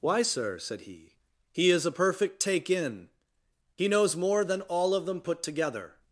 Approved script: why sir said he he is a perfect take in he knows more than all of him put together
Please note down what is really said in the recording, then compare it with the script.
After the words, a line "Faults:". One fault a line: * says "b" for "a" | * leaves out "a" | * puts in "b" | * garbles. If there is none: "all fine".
why sir said he he is a perfect take in he knows more than all of them put together
Faults:
* says "them" for "him"